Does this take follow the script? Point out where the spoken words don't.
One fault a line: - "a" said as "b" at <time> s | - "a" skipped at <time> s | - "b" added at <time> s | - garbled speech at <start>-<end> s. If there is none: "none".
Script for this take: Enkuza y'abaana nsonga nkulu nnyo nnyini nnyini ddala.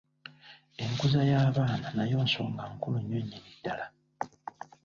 - "nayo" added at 1.9 s
- "nnyini" skipped at 3.5 s